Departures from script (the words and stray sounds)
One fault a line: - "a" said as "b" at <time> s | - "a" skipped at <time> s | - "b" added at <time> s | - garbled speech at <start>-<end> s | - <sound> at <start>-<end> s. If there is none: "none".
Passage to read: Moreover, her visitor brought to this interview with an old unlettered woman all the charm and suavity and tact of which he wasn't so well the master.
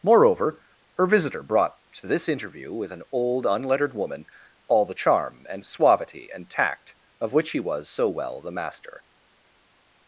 - "wasn't" said as "was" at 7.6 s